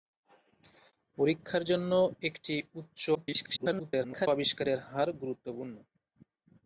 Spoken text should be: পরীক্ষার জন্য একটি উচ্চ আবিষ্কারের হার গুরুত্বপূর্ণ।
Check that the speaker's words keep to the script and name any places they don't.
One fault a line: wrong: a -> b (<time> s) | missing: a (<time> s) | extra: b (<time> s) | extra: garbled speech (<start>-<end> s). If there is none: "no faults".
extra: garbled speech (3.1-4.3 s)